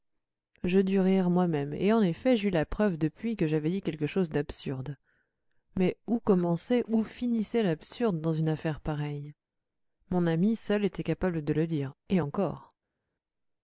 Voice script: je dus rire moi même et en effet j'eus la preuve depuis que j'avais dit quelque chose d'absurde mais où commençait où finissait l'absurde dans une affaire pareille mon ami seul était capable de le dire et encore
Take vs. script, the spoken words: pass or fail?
pass